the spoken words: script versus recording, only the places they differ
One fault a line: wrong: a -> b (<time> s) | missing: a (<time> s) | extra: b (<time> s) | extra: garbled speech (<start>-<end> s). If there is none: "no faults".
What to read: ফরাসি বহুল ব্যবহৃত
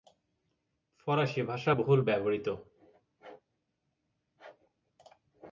extra: ভাষা (1.4 s)